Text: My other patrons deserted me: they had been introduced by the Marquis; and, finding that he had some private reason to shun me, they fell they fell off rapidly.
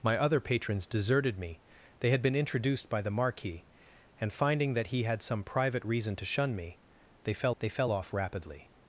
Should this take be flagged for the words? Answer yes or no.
no